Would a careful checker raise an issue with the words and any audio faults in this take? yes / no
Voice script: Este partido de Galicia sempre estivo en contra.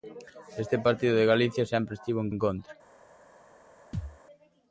yes